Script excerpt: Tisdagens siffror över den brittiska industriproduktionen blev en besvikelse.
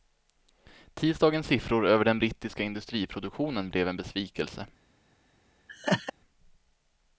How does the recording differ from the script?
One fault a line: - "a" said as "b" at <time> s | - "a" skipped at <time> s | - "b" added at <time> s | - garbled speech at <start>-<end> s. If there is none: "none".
none